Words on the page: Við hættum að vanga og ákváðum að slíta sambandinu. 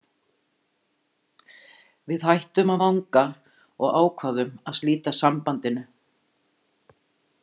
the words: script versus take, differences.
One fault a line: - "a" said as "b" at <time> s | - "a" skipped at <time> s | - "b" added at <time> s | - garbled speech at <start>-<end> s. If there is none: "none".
none